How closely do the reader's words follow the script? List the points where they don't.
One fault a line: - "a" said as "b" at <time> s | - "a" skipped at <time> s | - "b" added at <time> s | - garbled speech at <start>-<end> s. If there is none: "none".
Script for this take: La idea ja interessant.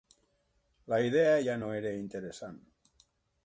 - "no era" added at 1.6 s